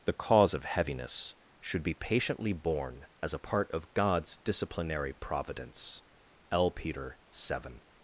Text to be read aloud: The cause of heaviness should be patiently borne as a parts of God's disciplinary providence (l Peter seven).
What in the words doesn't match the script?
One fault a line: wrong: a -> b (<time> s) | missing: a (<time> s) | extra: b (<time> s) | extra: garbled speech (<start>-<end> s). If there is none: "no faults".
wrong: parts -> part (3.4 s)